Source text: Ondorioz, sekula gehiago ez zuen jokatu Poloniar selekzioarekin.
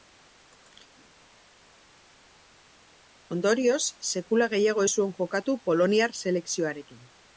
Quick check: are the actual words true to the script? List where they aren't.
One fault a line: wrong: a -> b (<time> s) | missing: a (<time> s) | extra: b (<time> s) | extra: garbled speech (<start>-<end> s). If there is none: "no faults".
no faults